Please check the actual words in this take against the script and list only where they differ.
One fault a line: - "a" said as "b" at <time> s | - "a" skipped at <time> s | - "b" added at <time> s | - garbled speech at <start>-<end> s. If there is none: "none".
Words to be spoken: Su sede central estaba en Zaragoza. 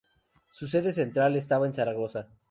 none